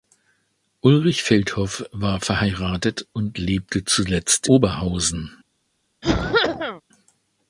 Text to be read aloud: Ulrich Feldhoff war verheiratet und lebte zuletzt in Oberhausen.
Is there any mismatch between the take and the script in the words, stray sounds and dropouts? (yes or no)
yes